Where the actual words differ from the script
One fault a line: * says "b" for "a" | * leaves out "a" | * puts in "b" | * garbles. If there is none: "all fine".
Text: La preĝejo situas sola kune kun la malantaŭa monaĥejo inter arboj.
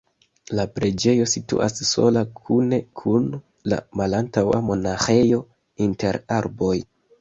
all fine